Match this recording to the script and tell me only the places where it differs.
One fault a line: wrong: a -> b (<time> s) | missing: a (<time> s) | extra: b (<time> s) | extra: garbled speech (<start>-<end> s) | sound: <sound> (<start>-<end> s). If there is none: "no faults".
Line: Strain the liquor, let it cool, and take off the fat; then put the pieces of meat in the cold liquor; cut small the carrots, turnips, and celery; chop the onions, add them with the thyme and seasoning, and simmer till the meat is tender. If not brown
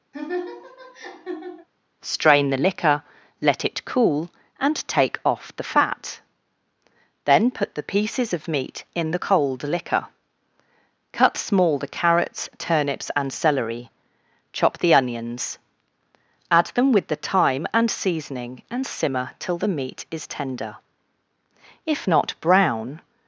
sound: laugh (0.1-1.7 s)